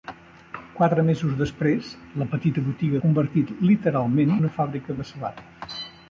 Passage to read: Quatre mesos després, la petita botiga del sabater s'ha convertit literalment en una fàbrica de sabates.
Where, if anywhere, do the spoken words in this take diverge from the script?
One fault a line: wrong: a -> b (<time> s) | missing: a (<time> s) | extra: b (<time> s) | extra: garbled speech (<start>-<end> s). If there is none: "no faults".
missing: del sabater s'ha (3.0 s)
missing: en (4.3 s)